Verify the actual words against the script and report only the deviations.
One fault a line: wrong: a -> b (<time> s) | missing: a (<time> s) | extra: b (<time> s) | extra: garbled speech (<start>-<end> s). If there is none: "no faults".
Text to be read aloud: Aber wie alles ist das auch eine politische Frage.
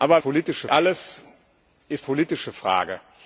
wrong: wie -> politische (0.2 s)
missing: das auch eine (2.1 s)